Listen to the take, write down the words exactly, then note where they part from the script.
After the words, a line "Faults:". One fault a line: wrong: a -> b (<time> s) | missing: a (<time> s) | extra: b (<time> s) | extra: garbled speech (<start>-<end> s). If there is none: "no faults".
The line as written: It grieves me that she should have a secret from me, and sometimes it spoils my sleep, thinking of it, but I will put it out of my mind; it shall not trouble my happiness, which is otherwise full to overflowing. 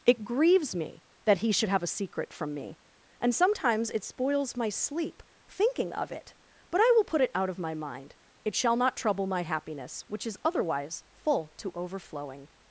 It grieves me that he should have a secret from me, and sometimes it spoils my sleep, thinking of it, but I will put it out of my mind; it shall not trouble my happiness, which is otherwise full to overflowing.
Faults:
wrong: she -> he (1.4 s)